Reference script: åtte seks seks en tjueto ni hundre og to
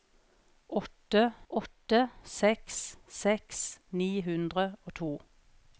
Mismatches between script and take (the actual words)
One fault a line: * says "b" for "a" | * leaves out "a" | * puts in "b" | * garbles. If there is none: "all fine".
* puts in "åtte"
* leaves out "en tjueto"